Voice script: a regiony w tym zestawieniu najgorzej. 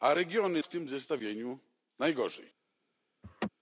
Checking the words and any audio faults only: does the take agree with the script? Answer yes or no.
no